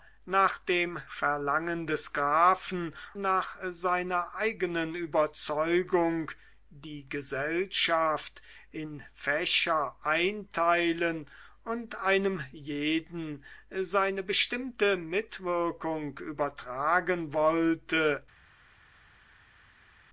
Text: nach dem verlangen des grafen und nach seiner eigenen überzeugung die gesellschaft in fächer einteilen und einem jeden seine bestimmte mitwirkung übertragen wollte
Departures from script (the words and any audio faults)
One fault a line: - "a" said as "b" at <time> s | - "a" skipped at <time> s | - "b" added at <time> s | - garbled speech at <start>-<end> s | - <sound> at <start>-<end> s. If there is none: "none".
- "und" skipped at 3.0 s